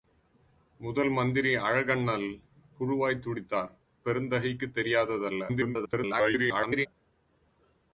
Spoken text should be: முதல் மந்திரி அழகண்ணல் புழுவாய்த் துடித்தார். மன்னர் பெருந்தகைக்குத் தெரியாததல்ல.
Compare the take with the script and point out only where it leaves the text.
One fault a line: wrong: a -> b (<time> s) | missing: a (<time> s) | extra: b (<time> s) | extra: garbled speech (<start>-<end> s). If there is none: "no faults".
missing: மன்னர் (3.7 s)
extra: garbled speech (5.5-6.9 s)